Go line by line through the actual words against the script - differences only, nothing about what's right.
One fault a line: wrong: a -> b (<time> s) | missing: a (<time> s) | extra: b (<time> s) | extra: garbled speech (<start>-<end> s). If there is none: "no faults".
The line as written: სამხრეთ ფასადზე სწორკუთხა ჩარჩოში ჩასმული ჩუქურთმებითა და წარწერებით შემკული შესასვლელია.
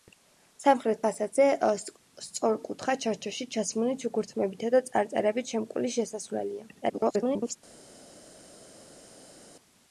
extra: garbled speech (6.8-7.6 s)